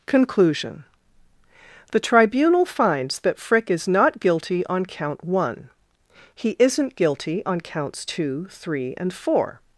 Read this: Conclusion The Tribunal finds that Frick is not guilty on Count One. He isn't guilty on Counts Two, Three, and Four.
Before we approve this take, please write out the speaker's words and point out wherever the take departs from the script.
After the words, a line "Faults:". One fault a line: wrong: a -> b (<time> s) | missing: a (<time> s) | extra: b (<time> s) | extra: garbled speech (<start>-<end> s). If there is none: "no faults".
Conclusion The Tribunal finds that Frick is not guilty on Count One. He isn't guilty on Counts Two, Three, and Four.
Faults:
no faults